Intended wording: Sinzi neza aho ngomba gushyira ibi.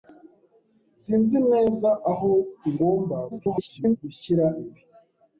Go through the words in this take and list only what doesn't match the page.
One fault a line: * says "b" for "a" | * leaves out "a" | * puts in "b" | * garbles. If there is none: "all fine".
* garbles